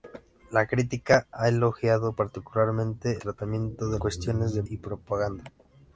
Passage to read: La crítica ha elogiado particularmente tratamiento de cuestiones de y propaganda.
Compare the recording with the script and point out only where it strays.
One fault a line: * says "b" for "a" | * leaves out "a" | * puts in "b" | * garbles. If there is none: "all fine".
all fine